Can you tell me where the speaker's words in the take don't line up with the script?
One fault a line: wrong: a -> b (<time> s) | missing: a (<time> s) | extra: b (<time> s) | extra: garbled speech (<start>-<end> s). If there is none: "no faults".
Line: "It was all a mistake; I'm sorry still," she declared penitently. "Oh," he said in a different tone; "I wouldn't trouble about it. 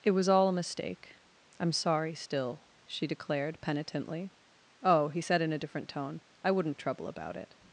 no faults